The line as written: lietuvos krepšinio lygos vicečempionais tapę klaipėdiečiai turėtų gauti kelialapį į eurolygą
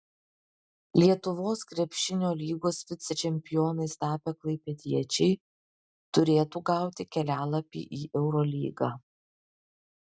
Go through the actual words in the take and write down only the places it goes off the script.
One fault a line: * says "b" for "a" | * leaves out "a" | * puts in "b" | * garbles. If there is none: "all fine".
all fine